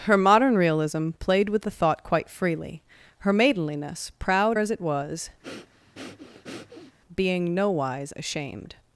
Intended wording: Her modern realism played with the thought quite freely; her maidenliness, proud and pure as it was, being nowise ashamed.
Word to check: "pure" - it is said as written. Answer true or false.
false